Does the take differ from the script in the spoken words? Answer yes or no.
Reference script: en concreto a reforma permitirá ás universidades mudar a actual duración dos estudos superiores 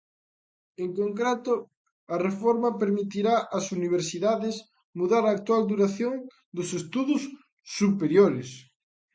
no